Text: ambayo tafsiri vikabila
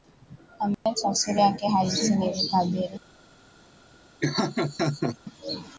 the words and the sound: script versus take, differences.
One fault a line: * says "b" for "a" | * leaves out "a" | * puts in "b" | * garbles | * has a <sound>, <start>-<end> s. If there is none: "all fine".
* has a dropout, 0.7-0.9 s
* puts in "yake halisi ni"
* has a laugh, 4.2-5.2 s